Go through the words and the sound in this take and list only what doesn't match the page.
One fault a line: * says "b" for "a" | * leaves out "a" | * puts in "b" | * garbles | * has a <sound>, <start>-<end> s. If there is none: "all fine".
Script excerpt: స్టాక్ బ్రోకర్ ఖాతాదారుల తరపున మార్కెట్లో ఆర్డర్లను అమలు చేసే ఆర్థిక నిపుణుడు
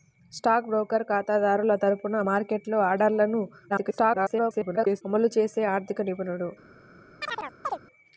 * garbles
* has a chirp, 7.2-7.8 s